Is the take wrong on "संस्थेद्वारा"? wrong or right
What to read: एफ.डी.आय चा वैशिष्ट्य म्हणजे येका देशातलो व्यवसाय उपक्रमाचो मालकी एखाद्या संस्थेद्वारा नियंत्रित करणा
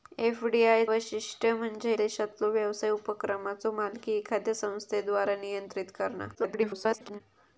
right